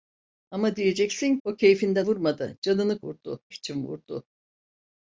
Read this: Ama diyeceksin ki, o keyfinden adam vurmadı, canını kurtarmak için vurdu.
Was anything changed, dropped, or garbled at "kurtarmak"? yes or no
yes